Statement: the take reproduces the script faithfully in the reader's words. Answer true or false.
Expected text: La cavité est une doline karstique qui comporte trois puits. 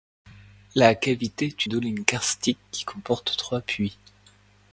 false